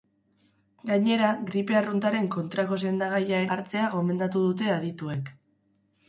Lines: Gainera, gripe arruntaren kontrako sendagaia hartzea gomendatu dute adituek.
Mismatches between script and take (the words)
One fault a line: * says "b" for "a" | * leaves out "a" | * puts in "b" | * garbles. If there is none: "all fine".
all fine